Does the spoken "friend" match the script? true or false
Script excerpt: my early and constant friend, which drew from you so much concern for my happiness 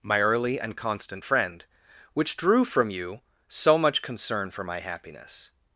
true